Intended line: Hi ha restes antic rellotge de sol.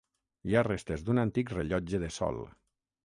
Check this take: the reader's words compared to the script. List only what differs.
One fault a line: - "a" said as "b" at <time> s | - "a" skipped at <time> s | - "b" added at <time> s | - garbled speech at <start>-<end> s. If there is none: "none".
- "d'un" added at 1.1 s